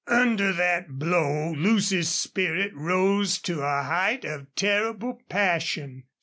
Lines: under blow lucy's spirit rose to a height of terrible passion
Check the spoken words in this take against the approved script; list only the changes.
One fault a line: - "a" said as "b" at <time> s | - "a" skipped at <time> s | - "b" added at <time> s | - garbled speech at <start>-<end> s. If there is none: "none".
- "that" added at 0.5 s